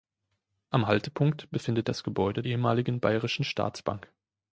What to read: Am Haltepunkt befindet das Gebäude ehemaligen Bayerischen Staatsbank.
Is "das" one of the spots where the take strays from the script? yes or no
no